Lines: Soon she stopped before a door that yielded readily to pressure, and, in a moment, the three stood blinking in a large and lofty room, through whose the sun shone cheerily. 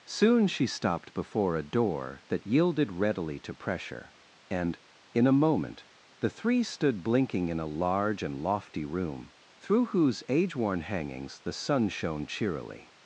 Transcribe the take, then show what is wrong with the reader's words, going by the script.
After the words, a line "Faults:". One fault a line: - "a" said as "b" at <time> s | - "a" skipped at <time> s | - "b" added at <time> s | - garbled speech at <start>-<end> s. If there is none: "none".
Soon she stopped before a door that yielded readily to pressure, and, in a moment, the three stood blinking in a large and lofty room, through whose age worn hangings the sun shone cheerily.
Faults:
- "age worn hangings" added at 10.3 s